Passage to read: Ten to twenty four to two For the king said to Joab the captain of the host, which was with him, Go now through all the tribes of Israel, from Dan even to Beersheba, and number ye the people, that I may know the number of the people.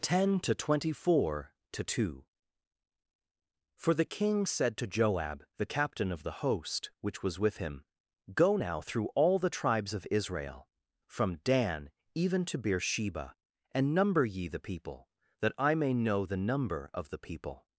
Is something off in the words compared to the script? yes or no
no